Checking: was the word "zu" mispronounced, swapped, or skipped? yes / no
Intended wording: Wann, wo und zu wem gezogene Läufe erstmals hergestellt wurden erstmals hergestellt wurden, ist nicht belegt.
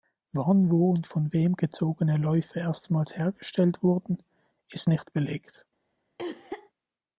yes